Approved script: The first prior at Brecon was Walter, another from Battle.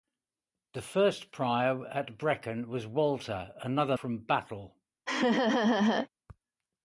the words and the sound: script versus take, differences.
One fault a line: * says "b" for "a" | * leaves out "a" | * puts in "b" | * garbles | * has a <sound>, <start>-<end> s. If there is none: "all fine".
* has a laugh, 5.1-6.1 s